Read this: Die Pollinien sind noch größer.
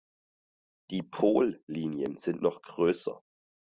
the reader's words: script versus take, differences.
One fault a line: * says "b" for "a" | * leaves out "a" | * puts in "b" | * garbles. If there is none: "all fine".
all fine